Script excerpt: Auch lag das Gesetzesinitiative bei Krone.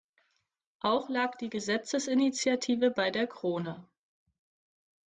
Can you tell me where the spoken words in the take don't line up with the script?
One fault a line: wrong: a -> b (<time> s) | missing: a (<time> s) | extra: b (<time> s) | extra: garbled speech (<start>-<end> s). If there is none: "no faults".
wrong: das -> die (1.4 s)
extra: der (3.1 s)